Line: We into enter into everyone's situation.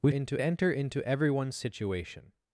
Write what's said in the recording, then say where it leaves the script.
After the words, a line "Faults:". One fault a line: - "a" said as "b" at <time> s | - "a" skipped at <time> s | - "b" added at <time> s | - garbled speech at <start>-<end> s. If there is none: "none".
We into enter into everyone's situation.
Faults:
none